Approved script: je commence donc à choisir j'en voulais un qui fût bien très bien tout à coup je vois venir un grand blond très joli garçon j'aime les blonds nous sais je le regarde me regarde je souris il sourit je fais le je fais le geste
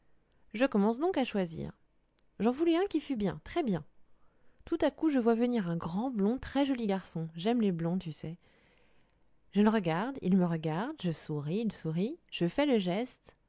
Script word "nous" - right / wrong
wrong